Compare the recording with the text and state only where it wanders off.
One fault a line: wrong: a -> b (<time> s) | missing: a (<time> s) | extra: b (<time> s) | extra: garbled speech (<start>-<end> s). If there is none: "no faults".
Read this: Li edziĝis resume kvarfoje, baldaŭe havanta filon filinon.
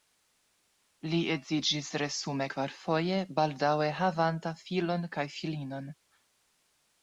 extra: kaj (5.2 s)